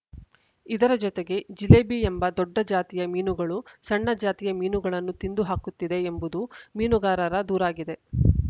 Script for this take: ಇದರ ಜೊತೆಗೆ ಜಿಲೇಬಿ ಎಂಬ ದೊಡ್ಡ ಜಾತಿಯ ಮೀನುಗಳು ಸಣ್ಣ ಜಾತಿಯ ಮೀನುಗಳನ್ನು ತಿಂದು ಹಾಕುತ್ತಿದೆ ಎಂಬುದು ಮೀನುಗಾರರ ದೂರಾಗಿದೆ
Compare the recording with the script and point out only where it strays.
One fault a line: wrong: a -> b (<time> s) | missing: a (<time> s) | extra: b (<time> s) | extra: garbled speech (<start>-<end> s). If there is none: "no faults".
no faults